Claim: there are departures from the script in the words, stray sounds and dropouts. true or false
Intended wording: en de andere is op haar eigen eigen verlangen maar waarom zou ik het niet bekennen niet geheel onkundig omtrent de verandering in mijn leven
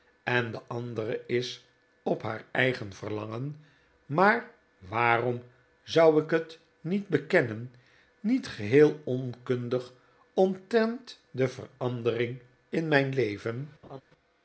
true